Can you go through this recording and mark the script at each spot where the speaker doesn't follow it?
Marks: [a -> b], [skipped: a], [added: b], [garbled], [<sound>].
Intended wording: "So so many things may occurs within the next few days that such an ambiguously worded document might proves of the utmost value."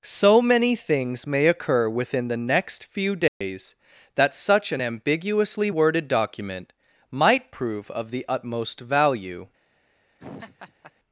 "So [skipped: so] many things may [occurs -> occur] within the next few days [dropout] that such an ambiguously worded document might [proves -> prove] of the utmost value." [laugh]